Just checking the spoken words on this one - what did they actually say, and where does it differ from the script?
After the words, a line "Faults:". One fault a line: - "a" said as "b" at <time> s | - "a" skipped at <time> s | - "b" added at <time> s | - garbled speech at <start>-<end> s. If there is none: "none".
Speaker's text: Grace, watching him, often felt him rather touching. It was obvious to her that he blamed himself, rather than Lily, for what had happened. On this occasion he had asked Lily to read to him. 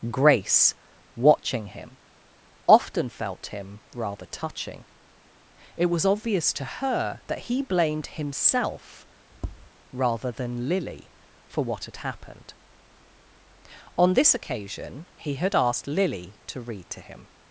Grace, watching him, often felt him rather touching. It was obvious to her that he blamed himself, rather than Lily, for what had happened. On this occasion he had asked Lily to read to him.
Faults:
none